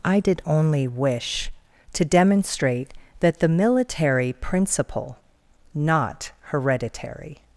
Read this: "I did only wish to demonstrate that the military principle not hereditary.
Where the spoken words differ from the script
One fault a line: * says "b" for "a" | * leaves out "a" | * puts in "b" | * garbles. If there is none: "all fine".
all fine